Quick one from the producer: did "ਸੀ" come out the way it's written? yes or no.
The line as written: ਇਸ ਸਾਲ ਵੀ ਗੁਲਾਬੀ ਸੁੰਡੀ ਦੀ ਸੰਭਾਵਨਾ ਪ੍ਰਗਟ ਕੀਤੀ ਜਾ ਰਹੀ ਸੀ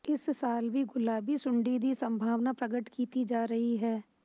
no